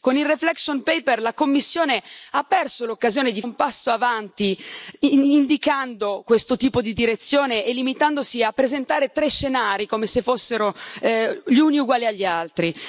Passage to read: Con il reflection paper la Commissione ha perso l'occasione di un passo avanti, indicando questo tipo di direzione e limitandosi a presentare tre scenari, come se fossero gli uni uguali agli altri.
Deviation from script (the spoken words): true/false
false